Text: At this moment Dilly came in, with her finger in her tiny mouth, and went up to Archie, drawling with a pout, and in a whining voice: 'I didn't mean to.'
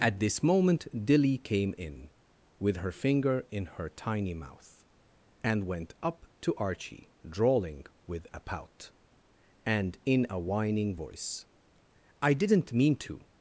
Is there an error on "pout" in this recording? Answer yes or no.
no